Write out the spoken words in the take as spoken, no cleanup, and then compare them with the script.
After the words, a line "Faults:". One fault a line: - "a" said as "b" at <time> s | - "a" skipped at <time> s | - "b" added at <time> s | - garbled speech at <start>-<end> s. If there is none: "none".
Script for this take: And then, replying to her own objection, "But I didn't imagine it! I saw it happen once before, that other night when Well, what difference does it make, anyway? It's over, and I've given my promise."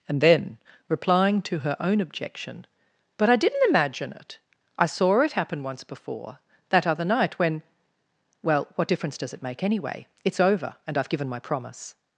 And then, replying to her own objection, "But I didn't imagine it! I saw it happen once before, that other night when Well, what difference does it make, anyway? It's over, and I've given my promise."
Faults:
none